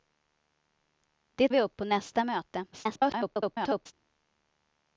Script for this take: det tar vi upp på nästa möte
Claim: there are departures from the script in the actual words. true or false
true